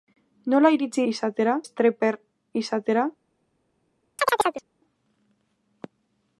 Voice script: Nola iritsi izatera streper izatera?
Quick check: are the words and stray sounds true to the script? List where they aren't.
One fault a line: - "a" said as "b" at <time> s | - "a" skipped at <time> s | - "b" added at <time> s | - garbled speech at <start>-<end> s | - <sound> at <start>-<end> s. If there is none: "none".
- chirp at 4.2-4.6 s